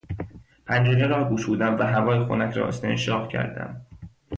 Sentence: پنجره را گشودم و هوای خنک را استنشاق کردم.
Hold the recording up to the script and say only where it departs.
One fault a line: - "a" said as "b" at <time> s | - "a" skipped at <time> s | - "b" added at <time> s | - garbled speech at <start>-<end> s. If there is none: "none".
none